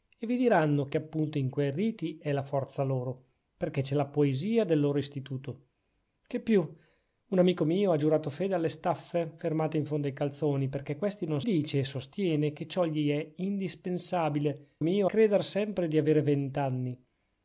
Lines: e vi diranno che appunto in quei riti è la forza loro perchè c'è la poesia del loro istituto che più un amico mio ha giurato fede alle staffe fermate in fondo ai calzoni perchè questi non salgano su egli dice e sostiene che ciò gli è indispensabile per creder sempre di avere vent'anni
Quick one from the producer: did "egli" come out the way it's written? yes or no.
no